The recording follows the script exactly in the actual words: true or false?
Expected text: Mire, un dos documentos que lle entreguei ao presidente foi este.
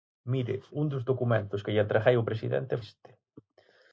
false